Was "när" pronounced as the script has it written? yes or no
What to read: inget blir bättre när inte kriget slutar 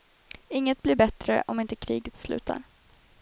no